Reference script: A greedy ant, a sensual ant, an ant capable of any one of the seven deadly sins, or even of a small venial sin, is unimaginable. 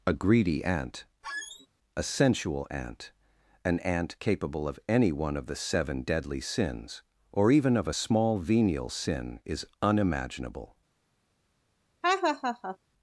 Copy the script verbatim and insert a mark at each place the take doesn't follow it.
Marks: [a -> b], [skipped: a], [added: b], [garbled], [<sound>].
A greedy ant, [squeak] a sensual ant, an ant capable of any one of the seven deadly sins, or even of a small venial sin, is unimaginable. [laugh]